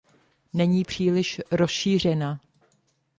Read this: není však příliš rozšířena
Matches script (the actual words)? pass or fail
fail